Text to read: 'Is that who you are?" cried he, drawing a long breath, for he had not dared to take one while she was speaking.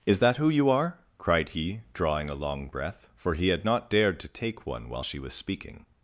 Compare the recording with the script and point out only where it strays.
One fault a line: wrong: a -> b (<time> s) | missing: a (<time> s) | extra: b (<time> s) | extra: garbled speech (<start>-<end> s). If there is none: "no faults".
no faults